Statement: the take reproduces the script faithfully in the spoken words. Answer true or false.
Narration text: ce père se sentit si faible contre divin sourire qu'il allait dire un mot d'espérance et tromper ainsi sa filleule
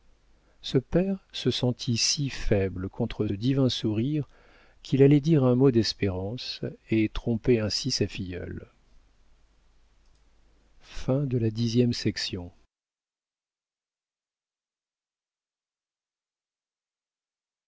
true